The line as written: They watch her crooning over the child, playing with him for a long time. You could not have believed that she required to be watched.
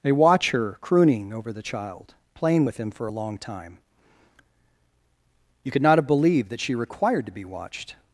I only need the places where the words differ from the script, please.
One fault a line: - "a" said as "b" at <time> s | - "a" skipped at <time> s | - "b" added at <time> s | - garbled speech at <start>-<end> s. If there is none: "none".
none